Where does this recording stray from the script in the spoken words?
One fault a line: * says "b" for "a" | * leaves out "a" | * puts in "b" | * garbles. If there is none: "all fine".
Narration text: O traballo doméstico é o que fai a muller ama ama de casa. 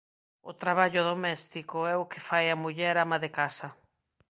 * leaves out "ama"